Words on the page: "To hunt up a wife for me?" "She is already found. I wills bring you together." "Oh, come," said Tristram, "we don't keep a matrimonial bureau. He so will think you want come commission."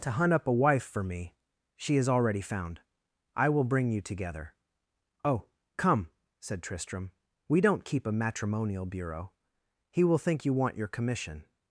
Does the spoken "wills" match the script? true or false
false